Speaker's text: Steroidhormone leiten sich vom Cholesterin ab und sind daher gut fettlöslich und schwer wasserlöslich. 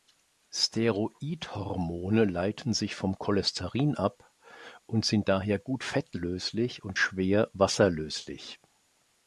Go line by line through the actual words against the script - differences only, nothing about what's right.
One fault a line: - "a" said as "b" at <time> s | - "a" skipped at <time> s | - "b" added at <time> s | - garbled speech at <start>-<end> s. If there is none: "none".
none